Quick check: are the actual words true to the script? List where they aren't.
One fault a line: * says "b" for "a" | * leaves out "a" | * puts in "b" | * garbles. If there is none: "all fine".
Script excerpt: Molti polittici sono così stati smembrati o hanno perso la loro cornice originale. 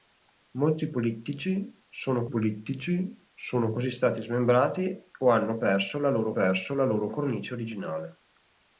* puts in "polittici sono"
* puts in "perso la loro"